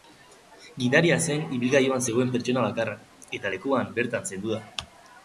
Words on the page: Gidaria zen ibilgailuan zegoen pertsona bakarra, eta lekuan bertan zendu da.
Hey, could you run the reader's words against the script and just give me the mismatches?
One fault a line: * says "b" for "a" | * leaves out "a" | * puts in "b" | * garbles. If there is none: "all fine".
all fine